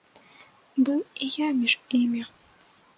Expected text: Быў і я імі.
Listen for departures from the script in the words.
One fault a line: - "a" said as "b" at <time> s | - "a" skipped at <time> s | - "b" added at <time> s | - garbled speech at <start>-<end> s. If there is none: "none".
- "між" added at 1.6 s